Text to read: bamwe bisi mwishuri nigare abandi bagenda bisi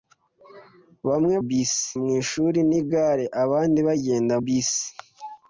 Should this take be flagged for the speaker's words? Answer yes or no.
no